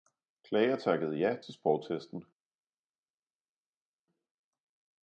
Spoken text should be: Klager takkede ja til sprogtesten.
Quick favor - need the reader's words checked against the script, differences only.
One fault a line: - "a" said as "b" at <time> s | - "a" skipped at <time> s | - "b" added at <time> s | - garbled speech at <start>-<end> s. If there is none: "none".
none